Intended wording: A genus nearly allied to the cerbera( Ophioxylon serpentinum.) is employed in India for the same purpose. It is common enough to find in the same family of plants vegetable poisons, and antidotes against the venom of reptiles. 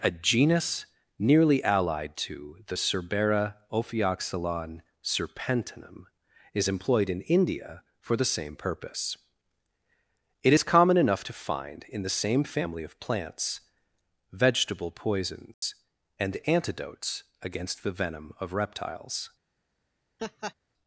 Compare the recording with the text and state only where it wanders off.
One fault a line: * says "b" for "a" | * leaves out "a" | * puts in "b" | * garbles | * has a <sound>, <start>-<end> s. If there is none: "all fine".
* has a dropout, 15.5-15.6 s
* has a laugh, 20.2-20.5 s